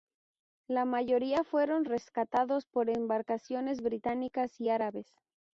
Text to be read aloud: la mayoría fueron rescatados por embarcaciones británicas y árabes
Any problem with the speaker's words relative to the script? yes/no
no